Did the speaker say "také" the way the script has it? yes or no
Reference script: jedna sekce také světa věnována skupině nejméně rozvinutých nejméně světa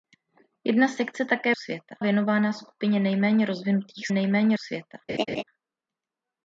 yes